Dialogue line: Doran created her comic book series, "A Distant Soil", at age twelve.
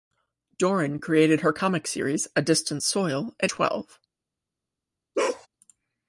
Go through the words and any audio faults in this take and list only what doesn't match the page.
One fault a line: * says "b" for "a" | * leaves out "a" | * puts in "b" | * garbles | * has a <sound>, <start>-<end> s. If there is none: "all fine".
* leaves out "book"
* leaves out "age"
* has a bark, 5.1-5.5 s